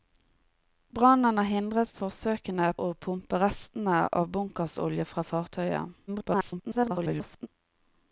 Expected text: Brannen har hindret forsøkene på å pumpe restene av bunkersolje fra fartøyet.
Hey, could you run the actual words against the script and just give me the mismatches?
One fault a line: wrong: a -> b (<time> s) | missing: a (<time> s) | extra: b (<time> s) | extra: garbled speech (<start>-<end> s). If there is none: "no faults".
missing: på (2.7 s)
extra: garbled speech (6.1-7.5 s)